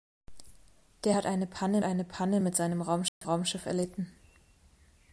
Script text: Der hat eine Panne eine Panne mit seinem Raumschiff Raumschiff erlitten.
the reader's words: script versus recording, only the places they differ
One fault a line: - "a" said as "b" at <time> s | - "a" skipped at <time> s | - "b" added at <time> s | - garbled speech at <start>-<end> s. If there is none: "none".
none